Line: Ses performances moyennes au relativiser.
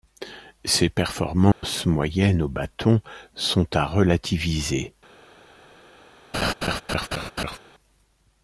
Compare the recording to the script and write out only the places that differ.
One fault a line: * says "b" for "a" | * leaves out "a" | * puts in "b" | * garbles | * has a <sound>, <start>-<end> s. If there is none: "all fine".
* has a dropout, 1.5-1.6 s
* puts in "bâton sont à"
* has a laugh, 6.3-7.6 s